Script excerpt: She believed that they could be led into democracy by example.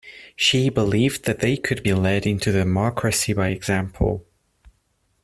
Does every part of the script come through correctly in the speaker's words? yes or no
yes